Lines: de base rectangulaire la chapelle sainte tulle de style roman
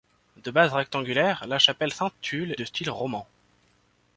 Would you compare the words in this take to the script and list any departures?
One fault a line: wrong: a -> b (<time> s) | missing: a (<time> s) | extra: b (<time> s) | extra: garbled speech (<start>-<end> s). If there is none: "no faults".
no faults